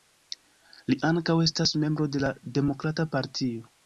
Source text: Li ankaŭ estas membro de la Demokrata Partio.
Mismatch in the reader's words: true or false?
false